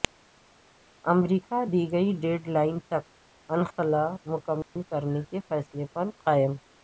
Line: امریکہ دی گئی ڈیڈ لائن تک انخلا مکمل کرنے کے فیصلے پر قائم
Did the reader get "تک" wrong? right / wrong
right